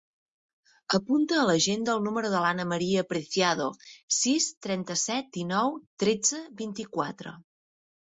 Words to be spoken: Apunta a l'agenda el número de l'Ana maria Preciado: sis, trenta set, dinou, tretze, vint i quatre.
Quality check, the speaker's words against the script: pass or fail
pass